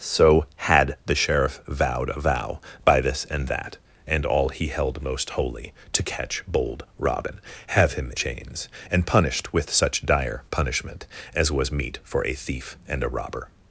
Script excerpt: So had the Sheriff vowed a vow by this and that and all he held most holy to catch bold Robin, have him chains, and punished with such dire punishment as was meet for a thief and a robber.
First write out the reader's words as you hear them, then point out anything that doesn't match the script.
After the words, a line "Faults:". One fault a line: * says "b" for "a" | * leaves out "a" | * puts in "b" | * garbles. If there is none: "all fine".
So had the Sheriff vowed a vow by this and that and all he held most holy to catch bold Robin, have him chains, and punished with such dire punishment as was meet for a thief and a robber.
Faults:
all fine